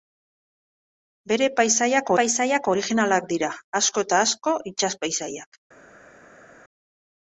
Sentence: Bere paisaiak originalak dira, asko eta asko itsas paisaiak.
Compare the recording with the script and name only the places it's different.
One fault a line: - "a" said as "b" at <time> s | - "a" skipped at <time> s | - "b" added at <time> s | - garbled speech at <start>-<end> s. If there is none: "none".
- "paisaiak" added at 2.2 s